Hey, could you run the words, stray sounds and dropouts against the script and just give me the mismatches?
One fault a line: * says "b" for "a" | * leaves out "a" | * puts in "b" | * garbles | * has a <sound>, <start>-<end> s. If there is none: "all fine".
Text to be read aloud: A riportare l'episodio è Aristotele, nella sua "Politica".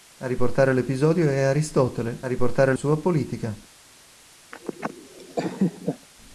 * says "riportare" for "nella"
* has a laugh, 4.5-6.1 s